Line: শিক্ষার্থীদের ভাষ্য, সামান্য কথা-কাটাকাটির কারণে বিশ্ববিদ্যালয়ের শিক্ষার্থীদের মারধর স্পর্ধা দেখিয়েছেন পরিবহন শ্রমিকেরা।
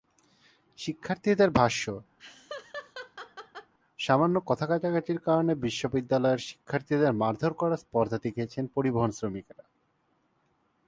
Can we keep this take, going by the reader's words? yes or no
no